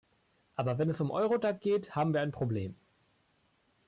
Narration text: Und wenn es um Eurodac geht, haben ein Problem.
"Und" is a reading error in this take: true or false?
true